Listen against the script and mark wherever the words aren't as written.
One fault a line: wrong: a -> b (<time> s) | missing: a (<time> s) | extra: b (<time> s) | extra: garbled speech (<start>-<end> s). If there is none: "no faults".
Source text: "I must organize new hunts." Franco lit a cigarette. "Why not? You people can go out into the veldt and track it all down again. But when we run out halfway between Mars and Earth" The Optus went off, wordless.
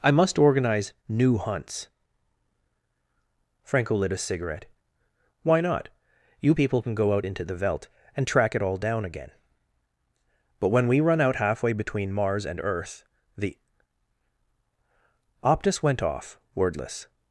no faults